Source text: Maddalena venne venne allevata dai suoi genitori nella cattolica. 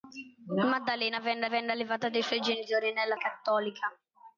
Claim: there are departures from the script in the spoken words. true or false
false